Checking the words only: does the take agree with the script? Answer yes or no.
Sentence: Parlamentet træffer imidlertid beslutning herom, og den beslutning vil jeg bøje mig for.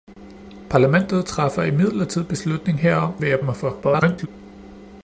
no